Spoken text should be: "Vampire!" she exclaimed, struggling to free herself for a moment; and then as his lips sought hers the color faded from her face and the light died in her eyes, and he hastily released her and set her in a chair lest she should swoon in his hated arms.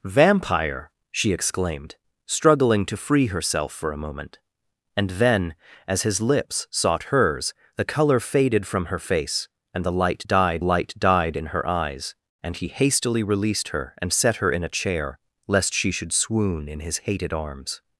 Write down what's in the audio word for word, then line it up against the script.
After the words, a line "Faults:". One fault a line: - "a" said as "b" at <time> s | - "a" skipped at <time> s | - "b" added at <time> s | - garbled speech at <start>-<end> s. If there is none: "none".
"Vampire!" she exclaimed, struggling to free herself for a moment; and then as his lips sought hers the color faded from her face and the light died light died in her eyes, and he hastily released her and set her in a chair lest she should swoon in his hated arms.
Faults:
- "light died" added at 10.6 s